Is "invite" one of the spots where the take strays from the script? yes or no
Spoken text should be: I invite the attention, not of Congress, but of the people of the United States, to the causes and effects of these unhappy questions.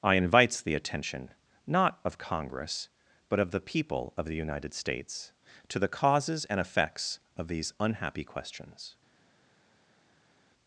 yes